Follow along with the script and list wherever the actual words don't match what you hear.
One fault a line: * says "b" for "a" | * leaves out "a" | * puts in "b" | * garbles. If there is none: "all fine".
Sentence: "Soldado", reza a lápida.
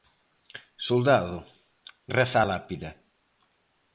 all fine